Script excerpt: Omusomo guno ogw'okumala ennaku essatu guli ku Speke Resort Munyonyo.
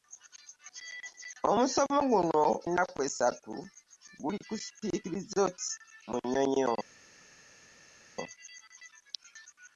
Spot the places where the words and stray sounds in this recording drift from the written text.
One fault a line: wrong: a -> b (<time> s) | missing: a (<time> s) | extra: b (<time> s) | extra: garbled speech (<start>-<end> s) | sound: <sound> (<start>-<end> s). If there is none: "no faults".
missing: ogw'okumala (2.4 s)